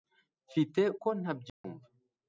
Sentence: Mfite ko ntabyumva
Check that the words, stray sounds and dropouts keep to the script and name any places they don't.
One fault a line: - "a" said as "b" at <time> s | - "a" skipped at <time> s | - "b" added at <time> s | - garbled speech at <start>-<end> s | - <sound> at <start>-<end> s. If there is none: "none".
- dropout at 1.5-1.6 s